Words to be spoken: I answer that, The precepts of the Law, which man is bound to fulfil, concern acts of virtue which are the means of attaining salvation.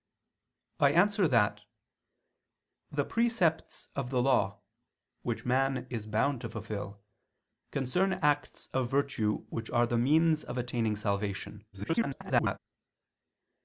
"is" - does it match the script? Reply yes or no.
yes